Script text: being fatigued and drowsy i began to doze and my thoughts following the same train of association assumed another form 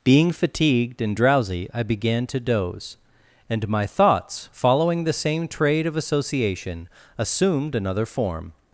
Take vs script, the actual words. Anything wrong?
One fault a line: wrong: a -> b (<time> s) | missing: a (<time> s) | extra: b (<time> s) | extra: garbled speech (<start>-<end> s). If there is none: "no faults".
wrong: train -> trade (5.5 s)